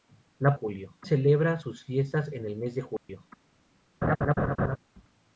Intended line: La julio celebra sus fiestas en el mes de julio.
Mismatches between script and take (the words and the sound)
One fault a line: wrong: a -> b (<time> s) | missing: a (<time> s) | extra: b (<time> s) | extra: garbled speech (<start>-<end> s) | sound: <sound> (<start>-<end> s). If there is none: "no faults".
sound: dropout (3.0-3.1 s)
sound: laugh (4.0-4.8 s)